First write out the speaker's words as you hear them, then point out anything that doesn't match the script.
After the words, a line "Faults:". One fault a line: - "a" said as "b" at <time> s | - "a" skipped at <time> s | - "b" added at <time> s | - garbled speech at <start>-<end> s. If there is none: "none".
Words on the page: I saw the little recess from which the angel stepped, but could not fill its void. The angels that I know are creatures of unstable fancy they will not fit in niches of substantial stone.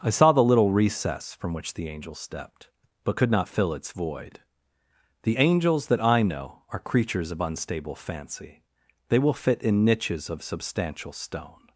I saw the little recess from which the angel stepped, but could not fill its void. The angels that I know are creatures of unstable fancy they will fit in niches of substantial stone.
Faults:
- "not" skipped at 9.3 s